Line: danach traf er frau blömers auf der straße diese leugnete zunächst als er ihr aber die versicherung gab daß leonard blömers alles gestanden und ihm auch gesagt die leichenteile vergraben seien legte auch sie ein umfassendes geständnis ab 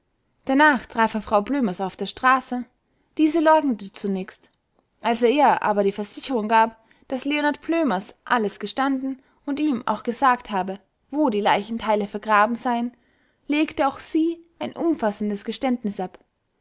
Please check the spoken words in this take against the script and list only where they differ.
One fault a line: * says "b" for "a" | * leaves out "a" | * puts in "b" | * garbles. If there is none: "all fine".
* puts in "habe wo"